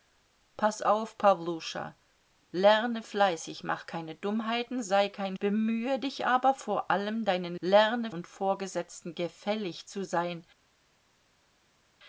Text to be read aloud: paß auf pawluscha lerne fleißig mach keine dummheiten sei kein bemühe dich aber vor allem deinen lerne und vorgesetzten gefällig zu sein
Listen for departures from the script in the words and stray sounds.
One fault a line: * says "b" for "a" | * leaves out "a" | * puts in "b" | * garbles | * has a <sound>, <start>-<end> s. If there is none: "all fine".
all fine